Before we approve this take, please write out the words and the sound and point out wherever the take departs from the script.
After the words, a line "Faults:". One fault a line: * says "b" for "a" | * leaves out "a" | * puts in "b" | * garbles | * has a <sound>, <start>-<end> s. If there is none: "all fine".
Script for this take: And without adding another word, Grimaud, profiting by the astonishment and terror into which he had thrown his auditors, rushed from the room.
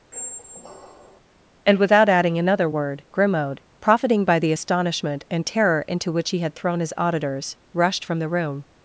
And without adding another word, Grimaud, profiting by the astonishment and terror into which he had thrown his auditors, rushed from the room.
Faults:
* has a squeak, 0.1-1.2 s